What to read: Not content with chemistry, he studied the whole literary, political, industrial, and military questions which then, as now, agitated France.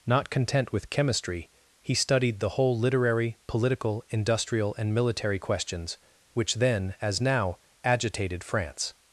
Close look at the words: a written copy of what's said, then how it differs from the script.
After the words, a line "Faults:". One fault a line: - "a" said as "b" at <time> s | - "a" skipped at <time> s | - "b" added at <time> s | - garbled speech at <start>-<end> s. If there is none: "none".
Not content with chemistry, he studied the whole literary, political, industrial, and military questions which then, as now, agitated France.
Faults:
none